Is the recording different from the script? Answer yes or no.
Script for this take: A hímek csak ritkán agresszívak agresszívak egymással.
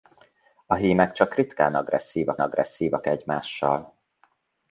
no